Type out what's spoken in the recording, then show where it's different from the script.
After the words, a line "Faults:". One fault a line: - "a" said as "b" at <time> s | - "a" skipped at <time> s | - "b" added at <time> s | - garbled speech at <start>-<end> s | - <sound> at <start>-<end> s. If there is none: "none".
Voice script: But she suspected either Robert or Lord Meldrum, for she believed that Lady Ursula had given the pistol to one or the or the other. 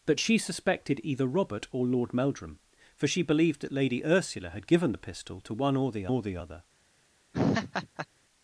But she suspected either Robert or Lord Meldrum, for she believed that Lady Ursula had given the pistol to one or the or the other.
Faults:
- laugh at 7.3-8.1 s